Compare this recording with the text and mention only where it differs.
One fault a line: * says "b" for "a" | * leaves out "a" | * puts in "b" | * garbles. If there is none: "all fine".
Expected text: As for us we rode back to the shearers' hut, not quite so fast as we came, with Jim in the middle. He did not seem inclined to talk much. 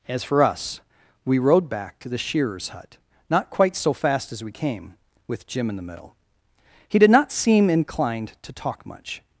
all fine